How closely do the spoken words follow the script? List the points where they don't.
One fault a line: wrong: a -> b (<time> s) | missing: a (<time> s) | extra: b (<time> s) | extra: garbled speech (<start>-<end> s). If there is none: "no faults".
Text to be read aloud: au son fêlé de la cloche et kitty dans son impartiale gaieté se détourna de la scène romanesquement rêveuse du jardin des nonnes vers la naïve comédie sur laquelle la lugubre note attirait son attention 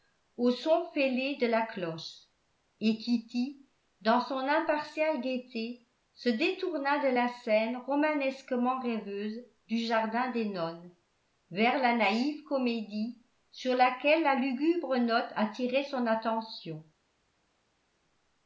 no faults